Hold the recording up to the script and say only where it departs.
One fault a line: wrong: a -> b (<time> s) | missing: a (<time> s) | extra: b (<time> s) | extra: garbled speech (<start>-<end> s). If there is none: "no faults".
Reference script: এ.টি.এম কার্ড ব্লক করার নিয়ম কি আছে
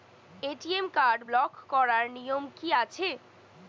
no faults